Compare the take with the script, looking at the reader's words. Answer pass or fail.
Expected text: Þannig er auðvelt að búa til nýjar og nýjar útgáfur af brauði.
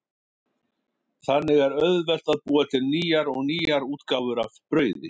pass